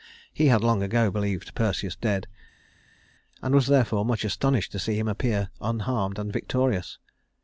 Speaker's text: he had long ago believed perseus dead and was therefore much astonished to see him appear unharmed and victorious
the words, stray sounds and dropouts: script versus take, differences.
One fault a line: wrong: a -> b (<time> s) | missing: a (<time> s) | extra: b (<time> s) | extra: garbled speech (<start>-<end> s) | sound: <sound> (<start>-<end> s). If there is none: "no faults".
no faults